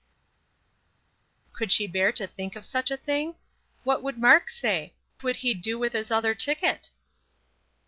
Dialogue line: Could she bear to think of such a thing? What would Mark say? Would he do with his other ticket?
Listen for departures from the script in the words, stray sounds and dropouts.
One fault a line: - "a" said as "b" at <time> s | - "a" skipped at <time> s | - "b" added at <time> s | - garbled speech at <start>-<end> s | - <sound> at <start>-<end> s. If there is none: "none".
none